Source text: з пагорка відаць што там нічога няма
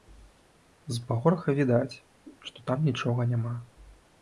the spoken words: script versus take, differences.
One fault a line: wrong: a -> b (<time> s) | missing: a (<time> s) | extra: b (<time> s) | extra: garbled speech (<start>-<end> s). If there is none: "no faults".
no faults